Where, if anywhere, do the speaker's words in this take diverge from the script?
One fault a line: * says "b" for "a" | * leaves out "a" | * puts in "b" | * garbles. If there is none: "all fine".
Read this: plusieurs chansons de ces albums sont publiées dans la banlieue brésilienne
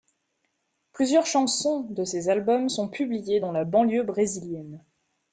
all fine